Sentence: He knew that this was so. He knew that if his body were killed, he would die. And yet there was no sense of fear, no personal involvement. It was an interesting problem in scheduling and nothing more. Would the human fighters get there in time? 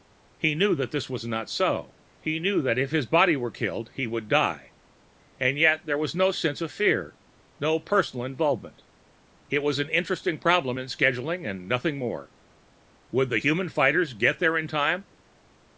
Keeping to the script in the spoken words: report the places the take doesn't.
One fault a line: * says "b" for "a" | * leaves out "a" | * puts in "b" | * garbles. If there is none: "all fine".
* puts in "not"